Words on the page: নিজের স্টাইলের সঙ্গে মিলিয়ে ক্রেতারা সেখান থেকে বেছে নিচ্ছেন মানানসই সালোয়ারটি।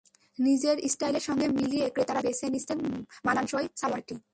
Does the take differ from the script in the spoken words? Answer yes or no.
yes